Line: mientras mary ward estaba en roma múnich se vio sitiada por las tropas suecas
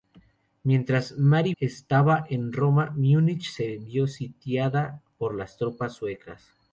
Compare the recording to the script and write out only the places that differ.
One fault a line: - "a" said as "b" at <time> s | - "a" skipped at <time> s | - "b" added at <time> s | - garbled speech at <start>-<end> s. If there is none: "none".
- "ward" skipped at 1.5 s